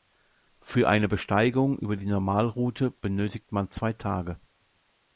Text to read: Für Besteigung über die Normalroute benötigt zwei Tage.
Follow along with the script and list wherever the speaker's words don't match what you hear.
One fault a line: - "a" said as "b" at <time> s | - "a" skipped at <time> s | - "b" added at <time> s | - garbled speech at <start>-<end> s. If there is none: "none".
- "eine" added at 0.9 s
- "man" added at 3.5 s